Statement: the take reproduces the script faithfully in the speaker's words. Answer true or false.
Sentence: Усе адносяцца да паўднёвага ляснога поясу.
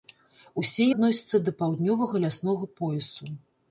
true